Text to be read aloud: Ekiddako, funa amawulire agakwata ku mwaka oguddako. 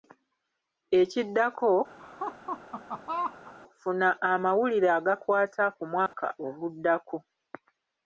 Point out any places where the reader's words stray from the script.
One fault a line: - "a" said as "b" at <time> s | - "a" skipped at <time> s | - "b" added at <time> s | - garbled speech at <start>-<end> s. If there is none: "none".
none